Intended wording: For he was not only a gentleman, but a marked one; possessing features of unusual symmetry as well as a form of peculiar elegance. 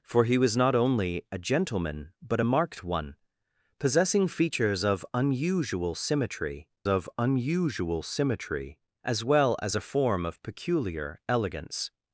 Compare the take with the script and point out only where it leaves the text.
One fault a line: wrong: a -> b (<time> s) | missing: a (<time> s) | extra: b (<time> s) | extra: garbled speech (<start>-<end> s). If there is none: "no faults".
extra: of unusual symmetry (6.9 s)